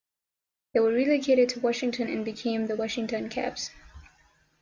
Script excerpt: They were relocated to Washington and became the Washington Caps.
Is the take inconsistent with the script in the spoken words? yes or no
no